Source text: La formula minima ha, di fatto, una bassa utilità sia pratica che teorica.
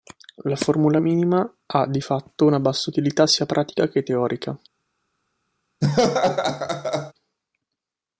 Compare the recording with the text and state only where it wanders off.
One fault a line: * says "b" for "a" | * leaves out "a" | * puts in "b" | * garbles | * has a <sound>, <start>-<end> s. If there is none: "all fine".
* has a laugh, 5.8-7.1 s